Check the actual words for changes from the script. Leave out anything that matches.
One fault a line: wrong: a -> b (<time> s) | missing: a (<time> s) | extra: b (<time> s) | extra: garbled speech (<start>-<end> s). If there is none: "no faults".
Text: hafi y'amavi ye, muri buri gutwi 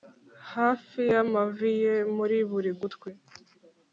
no faults